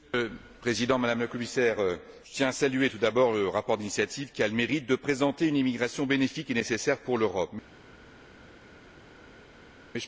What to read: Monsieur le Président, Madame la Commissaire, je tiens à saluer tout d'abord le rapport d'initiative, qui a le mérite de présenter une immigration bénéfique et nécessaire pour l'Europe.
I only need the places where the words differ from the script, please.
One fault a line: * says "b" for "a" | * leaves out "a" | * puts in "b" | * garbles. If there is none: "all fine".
all fine